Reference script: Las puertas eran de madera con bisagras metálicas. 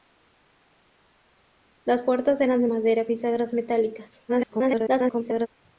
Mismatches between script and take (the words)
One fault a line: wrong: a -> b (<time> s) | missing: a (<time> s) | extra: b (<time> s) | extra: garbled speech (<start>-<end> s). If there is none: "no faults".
missing: con (3.1 s)
extra: garbled speech (4.3-5.5 s)